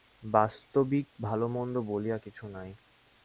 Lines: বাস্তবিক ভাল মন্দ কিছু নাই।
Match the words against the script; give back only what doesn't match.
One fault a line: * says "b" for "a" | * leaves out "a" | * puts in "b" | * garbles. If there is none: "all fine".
* puts in "বলিয়া"